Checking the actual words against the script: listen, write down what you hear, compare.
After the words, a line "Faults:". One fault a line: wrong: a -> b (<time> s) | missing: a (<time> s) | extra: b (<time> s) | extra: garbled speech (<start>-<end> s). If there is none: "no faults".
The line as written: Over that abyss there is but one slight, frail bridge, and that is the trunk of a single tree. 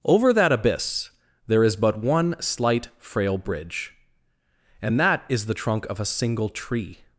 Over that abyss there is but one slight, frail bridge, and that is the trunk of a single tree.
Faults:
no faults